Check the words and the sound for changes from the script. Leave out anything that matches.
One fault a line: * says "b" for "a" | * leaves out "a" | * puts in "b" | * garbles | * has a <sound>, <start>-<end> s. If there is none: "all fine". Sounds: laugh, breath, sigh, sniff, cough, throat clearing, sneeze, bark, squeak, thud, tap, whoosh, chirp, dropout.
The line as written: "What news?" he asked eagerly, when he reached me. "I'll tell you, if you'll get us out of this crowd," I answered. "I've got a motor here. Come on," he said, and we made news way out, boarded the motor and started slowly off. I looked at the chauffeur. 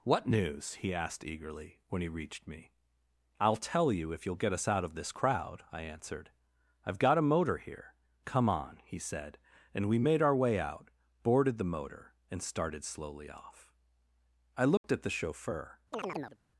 * says "our" for "news"
* has a dropout, 14.8-14.8 s
* has a chirp, 15.9-16.4 s